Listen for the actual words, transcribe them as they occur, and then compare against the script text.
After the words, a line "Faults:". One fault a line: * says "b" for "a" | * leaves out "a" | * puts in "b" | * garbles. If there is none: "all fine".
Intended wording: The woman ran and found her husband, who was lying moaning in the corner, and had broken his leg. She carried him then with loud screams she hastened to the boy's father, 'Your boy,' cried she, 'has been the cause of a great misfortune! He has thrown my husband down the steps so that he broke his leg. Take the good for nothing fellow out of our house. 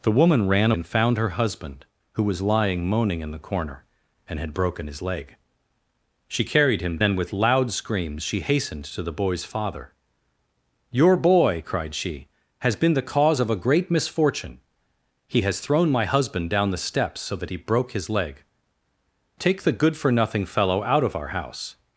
The woman ran and found her husband, who was lying moaning in the corner, and had broken his leg. She carried him then with loud screams she hastened to the boy's father, 'Your boy,' cried she, 'has been the cause of a great misfortune! He has thrown my husband down the steps so that he broke his leg. Take the good for nothing fellow out of our house.
Faults:
all fine